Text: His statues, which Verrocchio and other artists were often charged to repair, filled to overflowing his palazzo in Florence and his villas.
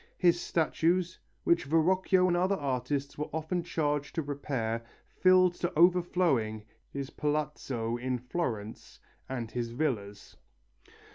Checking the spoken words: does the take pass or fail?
pass